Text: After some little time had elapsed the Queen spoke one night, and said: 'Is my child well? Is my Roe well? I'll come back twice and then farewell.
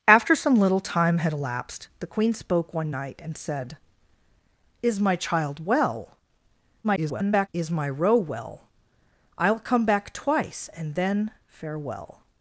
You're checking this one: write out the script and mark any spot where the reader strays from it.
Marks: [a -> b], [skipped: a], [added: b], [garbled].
After some little time had elapsed the Queen spoke one night, and said: 'Is my child well? [garbled] Is my Roe well? I'll come back twice and then farewell.